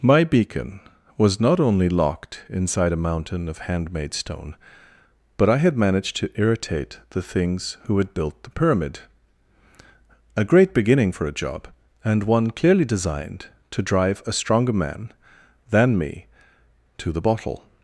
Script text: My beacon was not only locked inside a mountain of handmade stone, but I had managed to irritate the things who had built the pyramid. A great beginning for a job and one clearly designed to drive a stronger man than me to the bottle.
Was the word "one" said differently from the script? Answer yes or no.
no